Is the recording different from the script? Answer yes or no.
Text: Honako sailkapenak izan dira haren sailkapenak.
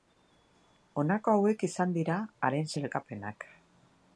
yes